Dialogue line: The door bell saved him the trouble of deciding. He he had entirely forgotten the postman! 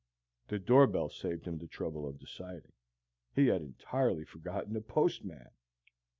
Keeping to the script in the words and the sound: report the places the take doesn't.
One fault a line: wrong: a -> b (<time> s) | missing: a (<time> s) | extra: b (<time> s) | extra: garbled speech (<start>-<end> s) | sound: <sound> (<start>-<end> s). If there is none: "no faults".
missing: he (3.5 s)